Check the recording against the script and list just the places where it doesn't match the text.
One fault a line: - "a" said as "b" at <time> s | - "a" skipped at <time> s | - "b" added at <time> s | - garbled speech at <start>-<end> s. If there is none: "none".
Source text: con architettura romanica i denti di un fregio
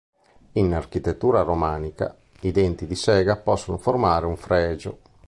- "con" said as "in" at 0.5 s
- "sega possono formare" added at 3.0 s